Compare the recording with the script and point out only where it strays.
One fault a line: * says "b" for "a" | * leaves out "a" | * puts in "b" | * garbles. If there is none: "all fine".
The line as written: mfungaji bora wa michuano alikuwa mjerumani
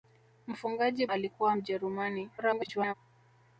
* leaves out "bora wa michuano"
* garbles